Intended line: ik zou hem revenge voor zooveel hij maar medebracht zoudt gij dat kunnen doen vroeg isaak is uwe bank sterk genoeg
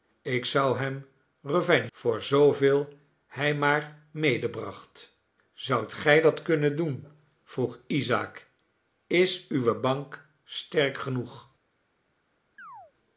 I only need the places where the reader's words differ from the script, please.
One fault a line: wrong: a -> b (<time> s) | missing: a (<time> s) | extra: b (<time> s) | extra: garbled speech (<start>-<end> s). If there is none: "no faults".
no faults